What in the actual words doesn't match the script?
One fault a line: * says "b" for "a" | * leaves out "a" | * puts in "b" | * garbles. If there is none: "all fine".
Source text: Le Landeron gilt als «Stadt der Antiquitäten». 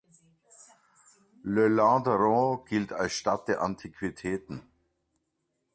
all fine